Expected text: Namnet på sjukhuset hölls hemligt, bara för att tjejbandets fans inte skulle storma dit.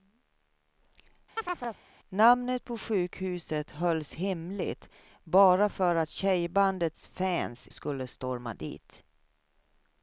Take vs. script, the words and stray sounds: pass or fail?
fail